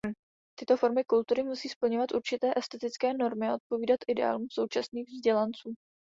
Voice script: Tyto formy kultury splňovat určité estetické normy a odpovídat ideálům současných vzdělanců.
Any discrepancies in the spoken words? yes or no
yes